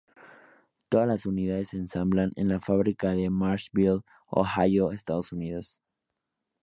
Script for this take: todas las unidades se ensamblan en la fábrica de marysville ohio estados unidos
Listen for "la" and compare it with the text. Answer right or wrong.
right